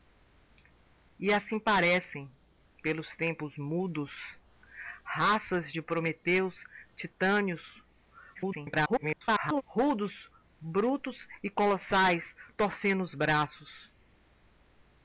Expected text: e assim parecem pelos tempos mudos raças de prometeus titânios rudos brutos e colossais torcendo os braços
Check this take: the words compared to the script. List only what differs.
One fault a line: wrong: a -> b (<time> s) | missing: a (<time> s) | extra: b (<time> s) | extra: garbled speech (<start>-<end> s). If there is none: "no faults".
extra: garbled speech (8.3-9.6 s)